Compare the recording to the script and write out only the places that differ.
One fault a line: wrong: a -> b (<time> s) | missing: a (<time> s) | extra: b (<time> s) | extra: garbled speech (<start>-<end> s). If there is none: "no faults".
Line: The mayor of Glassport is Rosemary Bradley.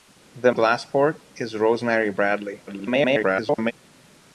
missing: mayor of (0.5 s)
extra: garbled speech (2.7-3.7 s)